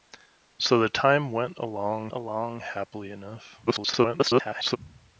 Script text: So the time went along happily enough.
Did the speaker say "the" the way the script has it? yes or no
yes